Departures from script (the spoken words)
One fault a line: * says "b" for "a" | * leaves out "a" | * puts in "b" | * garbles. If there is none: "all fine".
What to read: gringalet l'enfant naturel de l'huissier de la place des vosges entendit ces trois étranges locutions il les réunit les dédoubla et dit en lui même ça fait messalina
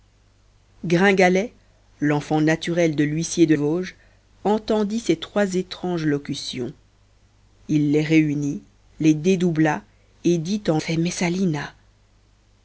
* leaves out "la place des"
* leaves out "lui même ça"